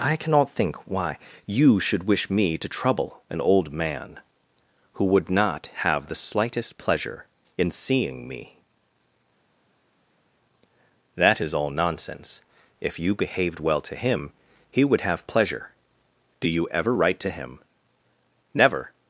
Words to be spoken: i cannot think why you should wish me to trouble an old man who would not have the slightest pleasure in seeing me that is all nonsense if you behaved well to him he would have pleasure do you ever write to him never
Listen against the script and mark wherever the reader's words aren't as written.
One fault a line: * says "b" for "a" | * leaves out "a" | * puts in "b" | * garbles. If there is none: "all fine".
all fine